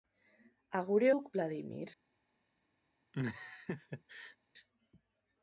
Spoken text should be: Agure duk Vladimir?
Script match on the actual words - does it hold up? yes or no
yes